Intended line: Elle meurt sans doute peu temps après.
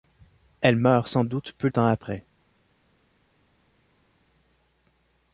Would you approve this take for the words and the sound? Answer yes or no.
yes